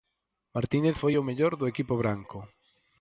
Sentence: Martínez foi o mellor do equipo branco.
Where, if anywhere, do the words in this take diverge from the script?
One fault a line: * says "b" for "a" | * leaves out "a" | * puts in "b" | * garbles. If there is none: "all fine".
all fine